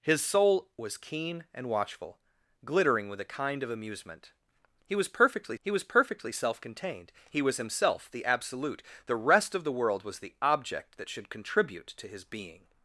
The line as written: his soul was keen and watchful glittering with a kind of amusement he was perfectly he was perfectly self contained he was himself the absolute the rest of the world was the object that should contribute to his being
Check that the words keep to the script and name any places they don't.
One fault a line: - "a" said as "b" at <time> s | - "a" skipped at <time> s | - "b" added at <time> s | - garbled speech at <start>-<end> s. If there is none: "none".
none